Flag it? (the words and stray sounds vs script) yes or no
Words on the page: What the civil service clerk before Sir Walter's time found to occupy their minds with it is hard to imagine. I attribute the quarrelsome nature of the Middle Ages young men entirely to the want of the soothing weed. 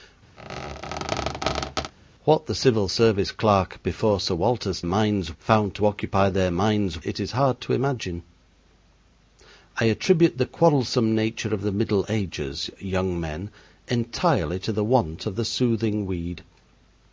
yes